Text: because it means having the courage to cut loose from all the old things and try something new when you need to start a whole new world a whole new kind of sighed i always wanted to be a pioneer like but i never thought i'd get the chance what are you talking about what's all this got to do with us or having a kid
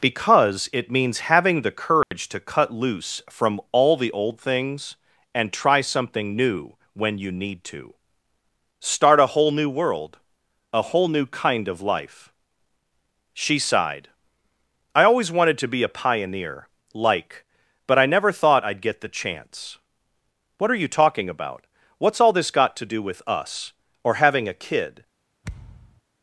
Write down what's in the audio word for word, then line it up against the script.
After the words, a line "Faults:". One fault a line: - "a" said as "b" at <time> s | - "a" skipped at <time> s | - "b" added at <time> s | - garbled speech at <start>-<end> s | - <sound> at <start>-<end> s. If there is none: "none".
because it means having the courage to cut loose from all the old things and try something new when you need to start a whole new world a whole new kind of life she sighed i always wanted to be a pioneer like but i never thought i'd get the chance what are you talking about what's all this got to do with us or having a kid
Faults:
- dropout at 2.0-2.1 s
- "life she" added at 11.8 s
- thud at 25.4-26.0 s